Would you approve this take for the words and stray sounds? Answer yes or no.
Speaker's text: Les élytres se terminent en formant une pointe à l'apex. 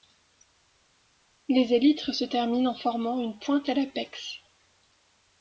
yes